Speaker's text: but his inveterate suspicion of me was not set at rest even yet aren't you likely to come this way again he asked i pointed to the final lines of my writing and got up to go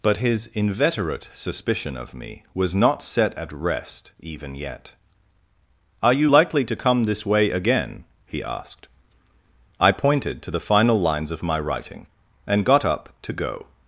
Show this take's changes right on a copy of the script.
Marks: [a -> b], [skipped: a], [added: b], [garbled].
but his inveterate suspicion of me was not set at rest even yet [aren't -> are] you likely to come this way again he asked i pointed to the final lines of my writing and got up to go